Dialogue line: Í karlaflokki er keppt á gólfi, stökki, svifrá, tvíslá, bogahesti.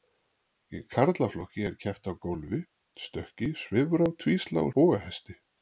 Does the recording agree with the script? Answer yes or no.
yes